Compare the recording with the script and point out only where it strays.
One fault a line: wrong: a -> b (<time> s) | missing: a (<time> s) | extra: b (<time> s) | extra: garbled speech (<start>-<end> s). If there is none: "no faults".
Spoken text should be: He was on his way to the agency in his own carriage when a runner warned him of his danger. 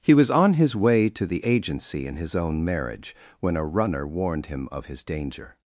wrong: carriage -> marriage (2.6 s)